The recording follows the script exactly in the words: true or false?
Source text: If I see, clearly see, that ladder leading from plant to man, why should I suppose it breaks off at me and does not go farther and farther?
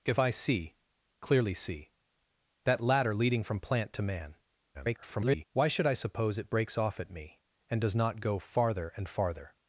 false